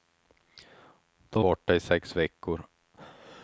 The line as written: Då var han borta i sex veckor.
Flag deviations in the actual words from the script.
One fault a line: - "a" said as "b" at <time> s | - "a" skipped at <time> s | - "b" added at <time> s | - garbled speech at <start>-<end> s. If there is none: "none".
- "var han" skipped at 1.4 s